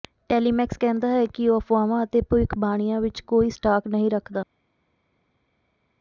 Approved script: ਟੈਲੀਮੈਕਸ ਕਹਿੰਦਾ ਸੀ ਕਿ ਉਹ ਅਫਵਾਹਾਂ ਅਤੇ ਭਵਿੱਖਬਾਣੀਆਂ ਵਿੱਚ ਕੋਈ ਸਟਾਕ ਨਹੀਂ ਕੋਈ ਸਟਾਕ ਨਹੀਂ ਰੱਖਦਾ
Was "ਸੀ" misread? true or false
true